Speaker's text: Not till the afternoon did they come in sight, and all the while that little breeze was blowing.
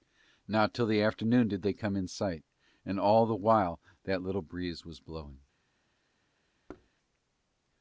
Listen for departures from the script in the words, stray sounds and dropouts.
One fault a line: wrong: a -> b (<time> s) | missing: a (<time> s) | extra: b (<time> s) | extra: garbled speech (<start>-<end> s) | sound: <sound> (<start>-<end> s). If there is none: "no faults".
sound: thud (6.7-6.9 s)